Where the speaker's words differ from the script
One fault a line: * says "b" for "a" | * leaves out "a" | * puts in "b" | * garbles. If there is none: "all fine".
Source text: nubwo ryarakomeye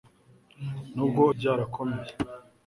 all fine